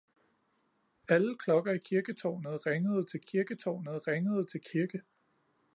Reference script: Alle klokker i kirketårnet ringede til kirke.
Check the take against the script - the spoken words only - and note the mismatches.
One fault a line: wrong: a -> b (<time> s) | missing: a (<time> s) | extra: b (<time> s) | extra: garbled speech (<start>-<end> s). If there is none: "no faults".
extra: kirketårnet ringede til (3.2 s)